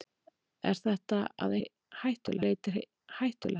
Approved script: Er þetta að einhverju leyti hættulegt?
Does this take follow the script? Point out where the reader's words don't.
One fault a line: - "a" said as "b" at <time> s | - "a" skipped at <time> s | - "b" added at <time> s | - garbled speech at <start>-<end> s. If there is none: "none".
- "einhverju" said as "hættulegt" at 1.6 s